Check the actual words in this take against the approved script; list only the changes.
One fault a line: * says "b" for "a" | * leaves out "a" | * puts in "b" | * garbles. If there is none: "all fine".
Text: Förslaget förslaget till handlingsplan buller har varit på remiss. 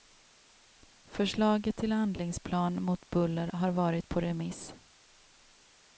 * leaves out "förslaget"
* puts in "mot"